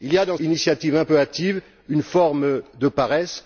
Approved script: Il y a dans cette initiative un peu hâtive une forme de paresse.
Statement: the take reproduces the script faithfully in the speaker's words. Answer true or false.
false